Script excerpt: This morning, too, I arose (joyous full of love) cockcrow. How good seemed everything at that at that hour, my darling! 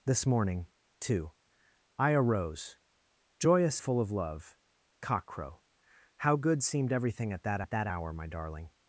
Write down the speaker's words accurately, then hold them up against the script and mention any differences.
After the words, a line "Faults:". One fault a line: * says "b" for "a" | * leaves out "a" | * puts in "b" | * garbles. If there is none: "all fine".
This morning, too, I arose (joyous full of love) cockcrow. How good seemed everything at that at that hour, my darling!
Faults:
all fine